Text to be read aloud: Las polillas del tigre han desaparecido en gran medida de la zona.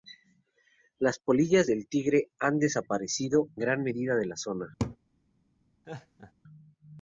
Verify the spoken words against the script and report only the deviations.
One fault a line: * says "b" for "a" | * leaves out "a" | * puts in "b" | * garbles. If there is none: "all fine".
* leaves out "en"